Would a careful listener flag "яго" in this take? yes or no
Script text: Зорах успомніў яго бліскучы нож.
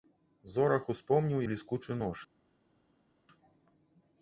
yes